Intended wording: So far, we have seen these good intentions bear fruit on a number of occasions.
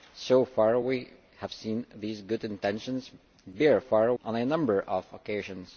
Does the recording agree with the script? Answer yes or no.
no